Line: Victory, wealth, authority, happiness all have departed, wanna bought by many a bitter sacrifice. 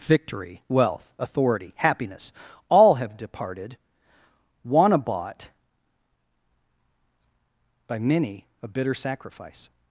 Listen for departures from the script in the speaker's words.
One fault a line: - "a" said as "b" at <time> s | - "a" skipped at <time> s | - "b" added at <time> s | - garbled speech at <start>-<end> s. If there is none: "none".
none